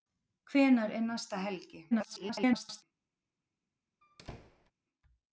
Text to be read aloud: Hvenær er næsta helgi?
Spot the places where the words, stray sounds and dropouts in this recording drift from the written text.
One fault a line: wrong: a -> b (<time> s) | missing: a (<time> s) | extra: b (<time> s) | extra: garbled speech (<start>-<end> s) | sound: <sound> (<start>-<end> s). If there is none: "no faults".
extra: garbled speech (1.9-2.8 s)
sound: squeak (4.0-4.7 s)